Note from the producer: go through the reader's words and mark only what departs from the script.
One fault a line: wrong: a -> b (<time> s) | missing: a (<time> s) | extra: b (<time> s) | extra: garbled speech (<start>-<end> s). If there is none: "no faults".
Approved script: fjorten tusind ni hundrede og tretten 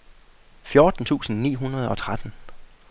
no faults